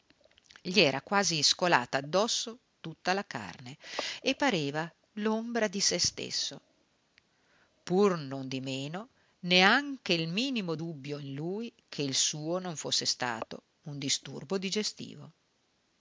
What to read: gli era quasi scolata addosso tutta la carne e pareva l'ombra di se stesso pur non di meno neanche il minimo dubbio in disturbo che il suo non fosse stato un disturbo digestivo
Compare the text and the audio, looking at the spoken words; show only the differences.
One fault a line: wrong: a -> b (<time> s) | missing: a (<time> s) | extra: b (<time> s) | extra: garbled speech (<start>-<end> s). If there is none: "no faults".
wrong: disturbo -> lui (11.3 s)